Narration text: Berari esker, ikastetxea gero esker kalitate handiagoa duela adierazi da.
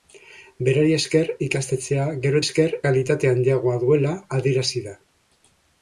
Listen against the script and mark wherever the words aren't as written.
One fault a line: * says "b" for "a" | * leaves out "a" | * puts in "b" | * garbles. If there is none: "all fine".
all fine